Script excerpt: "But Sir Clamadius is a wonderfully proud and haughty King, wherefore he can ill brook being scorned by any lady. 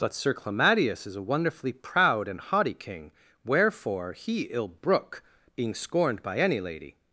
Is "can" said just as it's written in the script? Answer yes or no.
no